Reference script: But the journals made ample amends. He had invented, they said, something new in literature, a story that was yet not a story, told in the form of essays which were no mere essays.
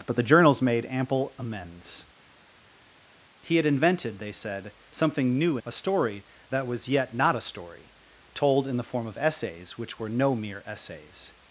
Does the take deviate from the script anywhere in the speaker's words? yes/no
yes